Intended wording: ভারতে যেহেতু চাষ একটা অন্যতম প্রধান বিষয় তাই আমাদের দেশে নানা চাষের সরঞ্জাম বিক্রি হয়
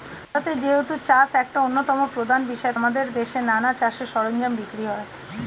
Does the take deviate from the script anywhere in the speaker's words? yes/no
yes